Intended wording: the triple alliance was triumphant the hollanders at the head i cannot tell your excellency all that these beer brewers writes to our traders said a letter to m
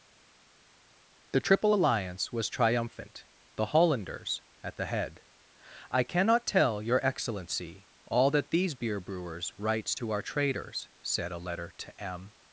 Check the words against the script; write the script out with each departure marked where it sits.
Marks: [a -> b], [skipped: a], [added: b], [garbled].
the triple alliance was triumphant the hollanders at the head i cannot tell your excellency all that these beer brewers writes to our traders said a letter to m